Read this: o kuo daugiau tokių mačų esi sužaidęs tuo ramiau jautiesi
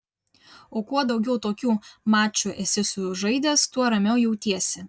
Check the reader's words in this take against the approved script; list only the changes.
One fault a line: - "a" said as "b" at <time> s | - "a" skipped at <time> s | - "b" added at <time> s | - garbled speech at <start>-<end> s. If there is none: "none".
none